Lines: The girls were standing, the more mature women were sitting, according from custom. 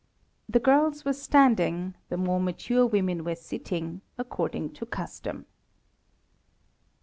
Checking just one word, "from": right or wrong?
wrong